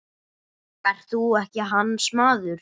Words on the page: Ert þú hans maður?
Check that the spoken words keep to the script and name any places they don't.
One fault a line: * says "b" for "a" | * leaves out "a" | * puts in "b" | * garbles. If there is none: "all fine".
* puts in "ekki"